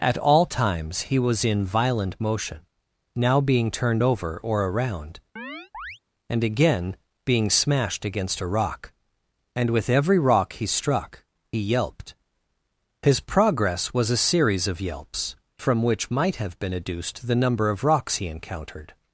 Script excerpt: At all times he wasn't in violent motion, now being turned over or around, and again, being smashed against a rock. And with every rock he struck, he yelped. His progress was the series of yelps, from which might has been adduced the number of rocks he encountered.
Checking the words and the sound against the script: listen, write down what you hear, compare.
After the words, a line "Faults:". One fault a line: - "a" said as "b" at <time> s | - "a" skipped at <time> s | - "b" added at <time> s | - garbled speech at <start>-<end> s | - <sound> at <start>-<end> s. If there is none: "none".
At all times he was in violent motion, now being turned over or around, and again, being smashed against a rock. And with every rock he struck, he yelped. His progress was a series of yelps, from which might have been adduced the number of rocks he encountered.
Faults:
- "wasn't" said as "was" at 1.2 s
- chirp at 5.4-6.0 s
- "the" said as "a" at 14.1 s
- "has" said as "have" at 16.4 s